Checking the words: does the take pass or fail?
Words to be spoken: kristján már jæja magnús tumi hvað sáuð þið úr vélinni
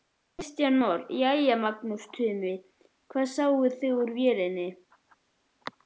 pass